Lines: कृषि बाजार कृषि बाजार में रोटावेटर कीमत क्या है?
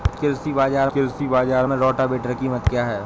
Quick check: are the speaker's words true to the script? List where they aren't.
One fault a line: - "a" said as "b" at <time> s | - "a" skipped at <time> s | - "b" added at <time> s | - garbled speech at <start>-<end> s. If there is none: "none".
none